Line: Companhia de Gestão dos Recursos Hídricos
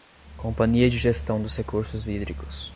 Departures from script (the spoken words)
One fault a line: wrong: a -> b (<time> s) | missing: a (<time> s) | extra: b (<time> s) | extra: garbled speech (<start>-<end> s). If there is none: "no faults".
no faults